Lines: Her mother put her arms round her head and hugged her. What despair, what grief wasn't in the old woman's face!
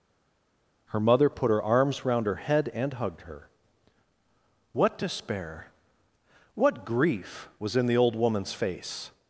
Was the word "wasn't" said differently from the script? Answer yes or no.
yes